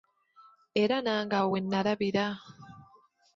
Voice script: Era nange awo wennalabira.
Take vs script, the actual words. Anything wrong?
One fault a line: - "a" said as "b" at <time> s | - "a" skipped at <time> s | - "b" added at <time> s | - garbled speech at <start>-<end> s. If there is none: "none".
none